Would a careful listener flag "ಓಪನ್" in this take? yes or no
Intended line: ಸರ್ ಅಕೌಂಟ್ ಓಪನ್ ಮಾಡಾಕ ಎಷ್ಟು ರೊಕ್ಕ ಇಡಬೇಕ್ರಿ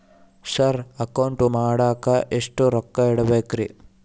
yes